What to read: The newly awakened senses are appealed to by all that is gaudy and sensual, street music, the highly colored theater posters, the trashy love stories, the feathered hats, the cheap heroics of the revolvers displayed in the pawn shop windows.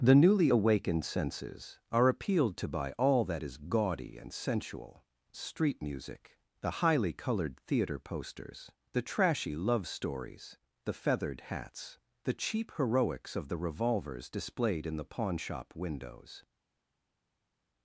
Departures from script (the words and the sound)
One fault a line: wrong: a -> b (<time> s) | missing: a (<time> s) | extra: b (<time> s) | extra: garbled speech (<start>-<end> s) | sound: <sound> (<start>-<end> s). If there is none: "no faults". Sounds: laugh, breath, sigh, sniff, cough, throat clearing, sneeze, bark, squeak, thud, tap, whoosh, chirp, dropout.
no faults